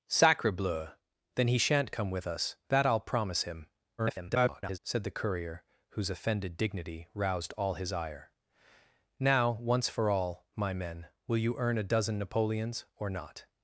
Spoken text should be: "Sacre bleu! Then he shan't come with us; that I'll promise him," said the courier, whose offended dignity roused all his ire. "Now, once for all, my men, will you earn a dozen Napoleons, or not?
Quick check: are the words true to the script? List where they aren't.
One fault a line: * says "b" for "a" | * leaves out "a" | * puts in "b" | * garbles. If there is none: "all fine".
* garbles